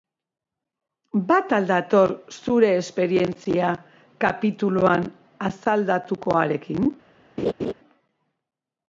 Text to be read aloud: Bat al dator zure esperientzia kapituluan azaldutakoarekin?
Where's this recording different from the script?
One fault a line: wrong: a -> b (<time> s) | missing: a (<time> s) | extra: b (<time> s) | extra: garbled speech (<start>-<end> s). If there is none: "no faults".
no faults